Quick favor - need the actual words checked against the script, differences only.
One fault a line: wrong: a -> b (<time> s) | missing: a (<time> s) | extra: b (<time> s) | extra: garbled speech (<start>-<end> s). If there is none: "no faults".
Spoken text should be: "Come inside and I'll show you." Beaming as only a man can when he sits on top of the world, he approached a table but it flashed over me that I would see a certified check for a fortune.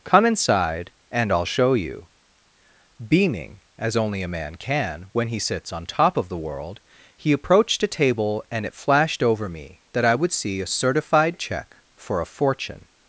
wrong: but -> and (8.5 s)